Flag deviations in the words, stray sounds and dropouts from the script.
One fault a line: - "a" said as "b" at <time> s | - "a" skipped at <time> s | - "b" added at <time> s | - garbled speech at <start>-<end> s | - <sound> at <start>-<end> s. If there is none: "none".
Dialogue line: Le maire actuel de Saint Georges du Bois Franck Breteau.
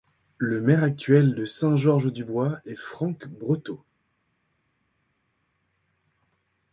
- "est" added at 2.6 s